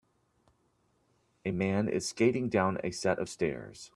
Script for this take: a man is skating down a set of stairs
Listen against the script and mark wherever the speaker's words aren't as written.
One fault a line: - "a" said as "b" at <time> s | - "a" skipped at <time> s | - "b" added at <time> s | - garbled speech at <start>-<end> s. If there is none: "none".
none